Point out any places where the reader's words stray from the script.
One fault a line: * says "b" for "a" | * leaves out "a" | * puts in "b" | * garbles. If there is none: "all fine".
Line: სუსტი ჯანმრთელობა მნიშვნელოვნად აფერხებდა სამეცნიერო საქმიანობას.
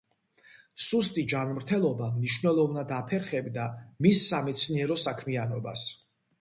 * puts in "მის"